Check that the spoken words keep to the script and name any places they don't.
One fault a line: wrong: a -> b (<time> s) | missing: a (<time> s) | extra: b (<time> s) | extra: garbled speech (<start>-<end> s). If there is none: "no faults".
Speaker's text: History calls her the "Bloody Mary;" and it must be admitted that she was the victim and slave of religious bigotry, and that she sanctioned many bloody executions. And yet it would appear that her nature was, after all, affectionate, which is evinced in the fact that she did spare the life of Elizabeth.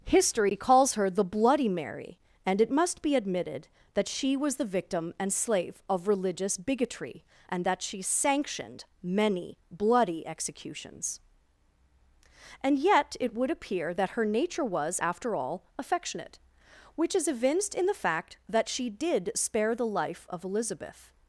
no faults